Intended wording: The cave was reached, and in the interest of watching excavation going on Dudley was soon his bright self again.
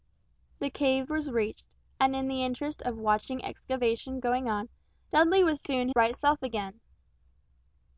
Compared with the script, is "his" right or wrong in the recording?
wrong